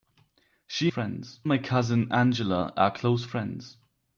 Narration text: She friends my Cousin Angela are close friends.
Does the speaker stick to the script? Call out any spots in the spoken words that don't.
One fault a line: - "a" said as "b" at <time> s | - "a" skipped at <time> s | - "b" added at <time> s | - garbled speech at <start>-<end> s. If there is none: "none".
none